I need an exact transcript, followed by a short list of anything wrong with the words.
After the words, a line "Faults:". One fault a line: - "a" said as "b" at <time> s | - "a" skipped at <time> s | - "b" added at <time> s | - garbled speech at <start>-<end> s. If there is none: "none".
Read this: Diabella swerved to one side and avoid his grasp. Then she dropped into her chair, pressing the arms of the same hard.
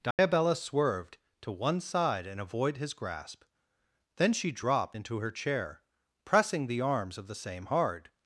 Diabella swerved to one side and avoid his grasp. Then she dropped into her chair, pressing the arms of the same hard.
Faults:
none